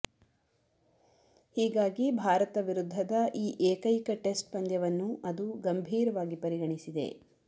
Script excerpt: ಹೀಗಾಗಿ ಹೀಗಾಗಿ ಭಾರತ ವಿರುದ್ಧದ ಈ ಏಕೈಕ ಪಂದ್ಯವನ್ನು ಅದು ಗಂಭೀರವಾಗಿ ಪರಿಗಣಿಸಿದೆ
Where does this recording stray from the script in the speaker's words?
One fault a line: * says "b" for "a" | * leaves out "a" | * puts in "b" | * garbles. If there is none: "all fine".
* leaves out "ಹೀಗಾಗಿ"
* puts in "ಟೆಸ್ಟ್"